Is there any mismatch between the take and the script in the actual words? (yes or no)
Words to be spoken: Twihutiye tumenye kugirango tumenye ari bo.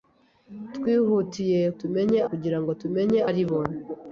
no